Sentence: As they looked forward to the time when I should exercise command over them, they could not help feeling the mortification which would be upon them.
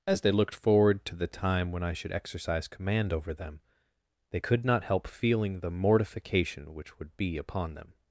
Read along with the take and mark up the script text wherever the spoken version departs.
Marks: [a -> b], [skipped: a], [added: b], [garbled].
As they looked forward to the time when I should exercise command over them, they could not help feeling the mortification which would be upon them.